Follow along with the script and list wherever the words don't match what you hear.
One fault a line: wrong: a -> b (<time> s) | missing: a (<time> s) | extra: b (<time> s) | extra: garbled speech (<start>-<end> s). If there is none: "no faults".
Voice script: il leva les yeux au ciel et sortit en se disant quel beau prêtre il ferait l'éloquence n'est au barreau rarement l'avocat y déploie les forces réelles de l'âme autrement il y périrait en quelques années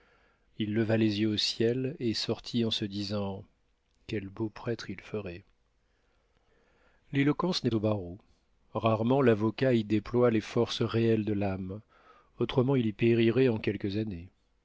no faults